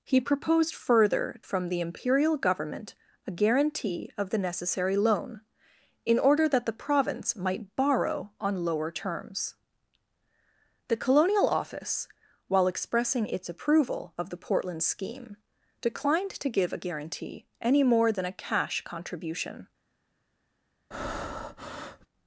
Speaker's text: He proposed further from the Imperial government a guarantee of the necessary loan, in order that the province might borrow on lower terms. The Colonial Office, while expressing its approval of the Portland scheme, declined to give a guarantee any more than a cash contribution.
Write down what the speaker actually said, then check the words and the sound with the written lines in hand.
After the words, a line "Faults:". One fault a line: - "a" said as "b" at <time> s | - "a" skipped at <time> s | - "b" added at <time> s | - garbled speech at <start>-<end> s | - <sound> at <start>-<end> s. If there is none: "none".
He proposed further from the Imperial government a guarantee of the necessary loan, in order that the province might borrow on lower terms. The Colonial Office, while expressing its approval of the Portland scheme, declined to give a guarantee any more than a cash contribution.
Faults:
- breath at 20.9-22.1 s